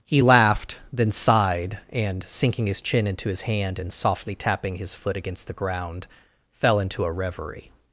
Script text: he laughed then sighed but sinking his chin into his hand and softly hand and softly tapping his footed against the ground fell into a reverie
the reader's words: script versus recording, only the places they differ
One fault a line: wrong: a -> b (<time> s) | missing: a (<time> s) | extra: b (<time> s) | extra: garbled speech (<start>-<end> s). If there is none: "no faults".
wrong: but -> and (1.9 s)
missing: hand and softly (4.3 s)
wrong: footed -> foot (4.9 s)